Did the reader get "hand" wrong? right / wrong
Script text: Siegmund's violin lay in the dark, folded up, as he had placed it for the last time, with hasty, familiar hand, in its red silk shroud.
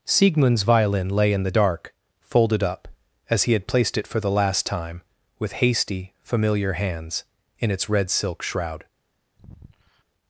wrong